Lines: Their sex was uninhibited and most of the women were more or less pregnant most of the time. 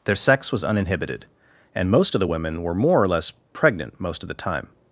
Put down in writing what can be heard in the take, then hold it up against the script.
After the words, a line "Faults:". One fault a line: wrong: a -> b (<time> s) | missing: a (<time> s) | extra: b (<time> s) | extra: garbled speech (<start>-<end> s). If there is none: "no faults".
Their sex was uninhibited and most of the women were more or less pregnant most of the time.
Faults:
no faults